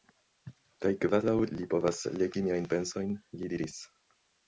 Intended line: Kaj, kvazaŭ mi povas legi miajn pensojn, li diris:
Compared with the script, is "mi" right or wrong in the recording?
wrong